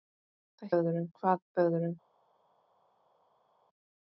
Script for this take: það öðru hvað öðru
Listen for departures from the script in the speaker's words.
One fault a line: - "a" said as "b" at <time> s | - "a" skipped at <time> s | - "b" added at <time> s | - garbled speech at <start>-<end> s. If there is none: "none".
none